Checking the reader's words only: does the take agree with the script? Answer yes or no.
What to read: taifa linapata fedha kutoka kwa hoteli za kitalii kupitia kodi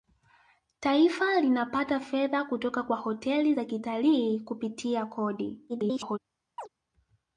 no